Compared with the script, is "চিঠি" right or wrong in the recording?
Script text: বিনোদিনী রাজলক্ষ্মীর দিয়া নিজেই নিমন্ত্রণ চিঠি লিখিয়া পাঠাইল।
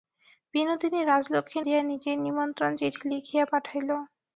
right